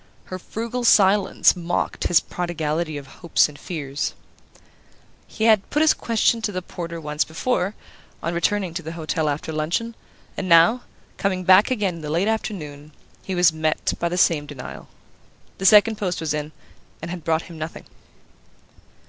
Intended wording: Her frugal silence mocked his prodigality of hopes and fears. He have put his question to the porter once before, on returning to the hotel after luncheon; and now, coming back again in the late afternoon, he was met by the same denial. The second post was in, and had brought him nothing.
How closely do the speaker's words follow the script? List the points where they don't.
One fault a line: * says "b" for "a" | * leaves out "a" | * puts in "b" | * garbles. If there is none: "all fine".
* says "had" for "have"